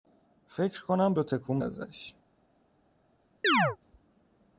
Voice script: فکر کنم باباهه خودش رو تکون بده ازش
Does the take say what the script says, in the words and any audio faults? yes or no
no